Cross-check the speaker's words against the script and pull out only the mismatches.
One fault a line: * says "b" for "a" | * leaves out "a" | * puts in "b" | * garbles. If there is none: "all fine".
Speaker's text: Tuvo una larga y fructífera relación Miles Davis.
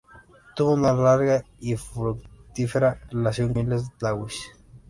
all fine